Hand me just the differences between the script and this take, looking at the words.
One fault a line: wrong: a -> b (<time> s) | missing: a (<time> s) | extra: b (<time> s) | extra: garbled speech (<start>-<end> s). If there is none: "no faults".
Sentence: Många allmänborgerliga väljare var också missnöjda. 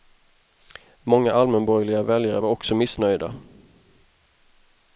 no faults